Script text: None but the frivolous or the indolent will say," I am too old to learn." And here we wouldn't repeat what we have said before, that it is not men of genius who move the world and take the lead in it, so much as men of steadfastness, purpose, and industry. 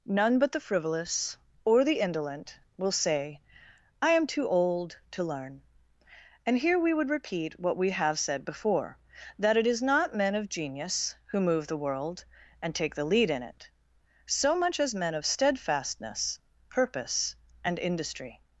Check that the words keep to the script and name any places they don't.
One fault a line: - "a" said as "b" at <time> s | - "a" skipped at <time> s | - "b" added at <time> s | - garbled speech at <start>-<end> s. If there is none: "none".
- "wouldn't" said as "would" at 6.9 s